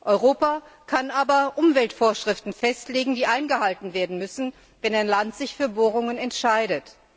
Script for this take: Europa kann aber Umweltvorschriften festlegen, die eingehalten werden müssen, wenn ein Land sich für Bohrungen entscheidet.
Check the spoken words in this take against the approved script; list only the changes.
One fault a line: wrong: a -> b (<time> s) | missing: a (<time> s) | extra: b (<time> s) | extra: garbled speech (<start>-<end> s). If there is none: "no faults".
no faults